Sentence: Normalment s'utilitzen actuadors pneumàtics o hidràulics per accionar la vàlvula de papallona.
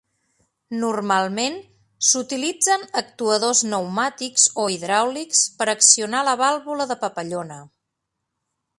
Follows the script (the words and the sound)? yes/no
yes